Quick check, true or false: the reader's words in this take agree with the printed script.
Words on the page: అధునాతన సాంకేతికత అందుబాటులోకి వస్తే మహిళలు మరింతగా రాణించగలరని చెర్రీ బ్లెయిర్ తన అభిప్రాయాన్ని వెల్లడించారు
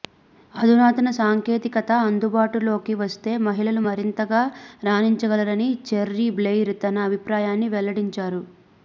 true